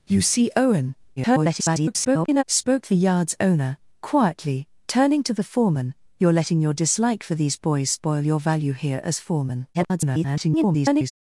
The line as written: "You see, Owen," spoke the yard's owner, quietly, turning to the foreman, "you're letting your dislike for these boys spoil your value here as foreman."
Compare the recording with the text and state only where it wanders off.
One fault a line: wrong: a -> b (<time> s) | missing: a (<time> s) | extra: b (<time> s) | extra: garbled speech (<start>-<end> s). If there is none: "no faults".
extra: garbled speech (1.2-2.4 s)
extra: garbled speech (9.7-11.1 s)